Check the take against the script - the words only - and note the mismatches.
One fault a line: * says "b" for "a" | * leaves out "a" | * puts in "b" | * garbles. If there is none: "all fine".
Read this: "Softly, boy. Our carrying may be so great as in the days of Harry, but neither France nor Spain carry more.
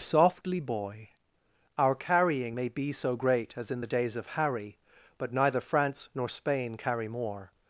all fine